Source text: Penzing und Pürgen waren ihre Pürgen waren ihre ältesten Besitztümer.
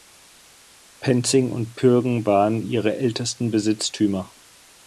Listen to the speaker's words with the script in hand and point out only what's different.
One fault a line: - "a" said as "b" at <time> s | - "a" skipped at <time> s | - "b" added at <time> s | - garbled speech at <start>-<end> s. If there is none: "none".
- "Pürgen waren ihre" skipped at 3.0 s